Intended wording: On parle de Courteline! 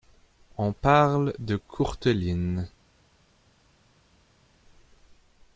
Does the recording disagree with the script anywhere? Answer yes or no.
no